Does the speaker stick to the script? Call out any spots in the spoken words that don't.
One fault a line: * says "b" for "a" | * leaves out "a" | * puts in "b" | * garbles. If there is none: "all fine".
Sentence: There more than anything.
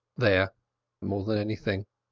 all fine